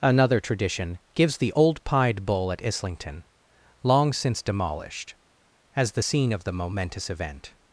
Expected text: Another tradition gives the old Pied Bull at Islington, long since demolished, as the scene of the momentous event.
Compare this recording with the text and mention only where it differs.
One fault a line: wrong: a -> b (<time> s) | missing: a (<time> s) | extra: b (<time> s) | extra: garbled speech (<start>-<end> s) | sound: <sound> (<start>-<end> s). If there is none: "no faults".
no faults